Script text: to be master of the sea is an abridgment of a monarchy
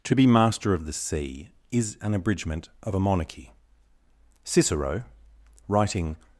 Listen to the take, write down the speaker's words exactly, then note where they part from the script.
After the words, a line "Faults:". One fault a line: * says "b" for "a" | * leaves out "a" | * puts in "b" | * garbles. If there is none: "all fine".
to be master of the sea is an abridgment of a monarchy cicero writing
Faults:
* puts in "cicero writing"